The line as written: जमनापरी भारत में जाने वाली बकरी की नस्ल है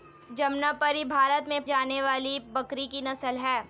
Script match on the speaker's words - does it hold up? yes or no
yes